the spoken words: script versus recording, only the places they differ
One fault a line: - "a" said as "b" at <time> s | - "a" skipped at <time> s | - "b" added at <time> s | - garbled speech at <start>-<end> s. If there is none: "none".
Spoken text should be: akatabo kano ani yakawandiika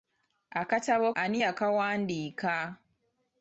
- "kano" skipped at 1.1 s